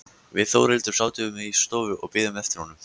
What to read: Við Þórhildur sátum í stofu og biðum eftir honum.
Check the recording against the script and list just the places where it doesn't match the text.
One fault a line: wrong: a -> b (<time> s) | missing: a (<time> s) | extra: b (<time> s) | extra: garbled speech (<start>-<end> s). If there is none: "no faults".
no faults